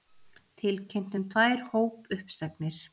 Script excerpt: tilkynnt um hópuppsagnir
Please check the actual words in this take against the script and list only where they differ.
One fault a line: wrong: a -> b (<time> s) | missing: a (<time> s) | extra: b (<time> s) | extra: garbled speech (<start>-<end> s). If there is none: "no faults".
extra: tvær (1.3 s)